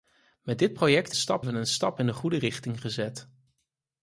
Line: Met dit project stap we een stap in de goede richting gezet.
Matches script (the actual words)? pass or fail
pass